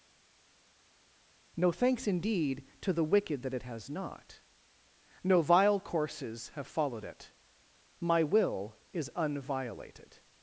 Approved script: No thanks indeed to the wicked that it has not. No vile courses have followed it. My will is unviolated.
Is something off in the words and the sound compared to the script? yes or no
no